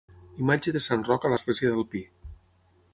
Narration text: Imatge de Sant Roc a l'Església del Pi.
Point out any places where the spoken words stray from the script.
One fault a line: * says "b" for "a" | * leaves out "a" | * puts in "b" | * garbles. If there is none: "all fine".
all fine